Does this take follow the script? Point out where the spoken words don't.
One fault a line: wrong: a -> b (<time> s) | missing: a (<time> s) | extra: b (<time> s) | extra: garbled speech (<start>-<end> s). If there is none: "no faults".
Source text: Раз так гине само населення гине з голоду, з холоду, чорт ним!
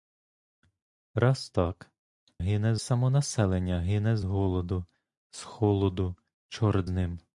no faults